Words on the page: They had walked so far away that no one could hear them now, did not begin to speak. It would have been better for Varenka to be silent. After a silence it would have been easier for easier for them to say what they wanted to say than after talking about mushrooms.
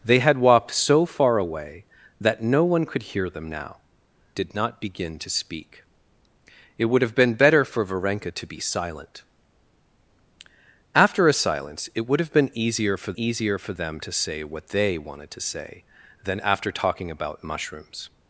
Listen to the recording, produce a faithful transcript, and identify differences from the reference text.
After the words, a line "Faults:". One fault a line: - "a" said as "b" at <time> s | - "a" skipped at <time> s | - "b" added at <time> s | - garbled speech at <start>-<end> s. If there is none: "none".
They had walked so far away that no one could hear them now, did not begin to speak. It would have been better for Varenka to be silent. After a silence it would have been easier for easier for them to say what they wanted to say than after talking about mushrooms.
Faults:
none